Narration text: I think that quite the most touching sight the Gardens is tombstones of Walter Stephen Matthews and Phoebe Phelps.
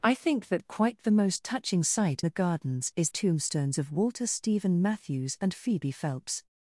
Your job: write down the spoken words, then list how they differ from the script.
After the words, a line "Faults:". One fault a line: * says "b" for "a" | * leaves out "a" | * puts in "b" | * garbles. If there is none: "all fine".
I think that quite the most touching sight the Gardens is tombstones of Walter Stephen Matthews and Phoebe Phelps.
Faults:
all fine